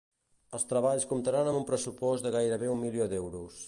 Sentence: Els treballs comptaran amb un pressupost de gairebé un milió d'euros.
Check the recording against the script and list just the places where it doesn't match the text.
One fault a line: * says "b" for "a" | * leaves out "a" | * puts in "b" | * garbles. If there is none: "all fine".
all fine